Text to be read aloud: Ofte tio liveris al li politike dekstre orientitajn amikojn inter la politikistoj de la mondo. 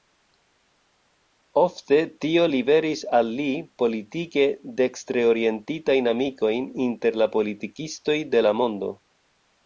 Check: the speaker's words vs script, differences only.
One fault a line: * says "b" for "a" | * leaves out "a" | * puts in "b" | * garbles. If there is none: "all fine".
all fine